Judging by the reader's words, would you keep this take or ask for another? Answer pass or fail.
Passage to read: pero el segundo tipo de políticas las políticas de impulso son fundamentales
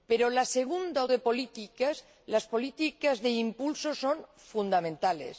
fail